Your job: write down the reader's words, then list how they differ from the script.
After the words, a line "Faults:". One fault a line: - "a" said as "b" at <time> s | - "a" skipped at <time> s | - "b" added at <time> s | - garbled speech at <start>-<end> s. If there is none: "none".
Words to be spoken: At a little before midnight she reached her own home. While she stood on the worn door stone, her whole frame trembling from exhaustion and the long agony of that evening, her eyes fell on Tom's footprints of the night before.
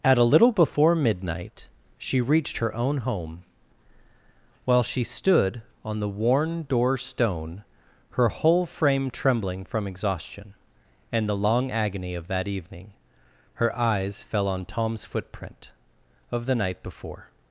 At a little before midnight she reached her own home. While she stood on the worn door stone, her whole frame trembling from exhaustion and the long agony of that evening, her eyes fell on Tom's footprint of the night before.
Faults:
- "footprints" said as "footprint" at 15.1 s